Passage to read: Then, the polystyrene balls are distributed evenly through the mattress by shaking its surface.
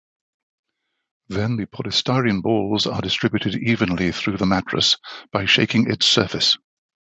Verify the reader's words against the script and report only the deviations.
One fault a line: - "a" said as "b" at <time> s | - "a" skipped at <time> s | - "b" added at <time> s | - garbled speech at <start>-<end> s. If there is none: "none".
none